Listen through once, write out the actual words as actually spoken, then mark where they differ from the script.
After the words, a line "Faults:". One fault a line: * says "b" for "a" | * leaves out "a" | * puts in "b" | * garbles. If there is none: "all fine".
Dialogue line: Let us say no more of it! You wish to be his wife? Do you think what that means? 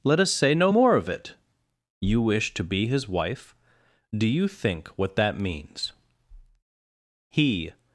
Let us say no more of it! You wish to be his wife? Do you think what that means? He
Faults:
* puts in "He"